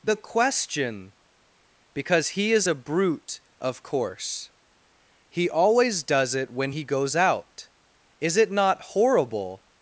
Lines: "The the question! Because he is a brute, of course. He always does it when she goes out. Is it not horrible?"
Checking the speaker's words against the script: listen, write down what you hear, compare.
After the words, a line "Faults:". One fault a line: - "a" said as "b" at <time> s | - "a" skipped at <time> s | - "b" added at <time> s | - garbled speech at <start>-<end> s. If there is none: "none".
"The question! Because he is a brute, of course. He always does it when he goes out. Is it not horrible?"
Faults:
- "the" skipped at 0.1 s
- "she" said as "he" at 6.7 s